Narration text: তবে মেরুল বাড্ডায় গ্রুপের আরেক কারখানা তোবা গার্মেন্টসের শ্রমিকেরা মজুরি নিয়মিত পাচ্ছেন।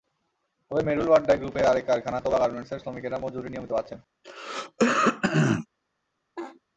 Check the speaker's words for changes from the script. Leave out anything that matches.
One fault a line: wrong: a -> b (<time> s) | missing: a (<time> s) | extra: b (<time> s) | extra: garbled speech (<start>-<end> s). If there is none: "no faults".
no faults